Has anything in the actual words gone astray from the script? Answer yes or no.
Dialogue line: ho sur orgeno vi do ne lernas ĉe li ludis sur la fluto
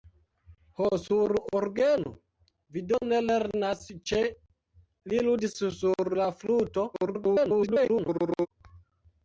yes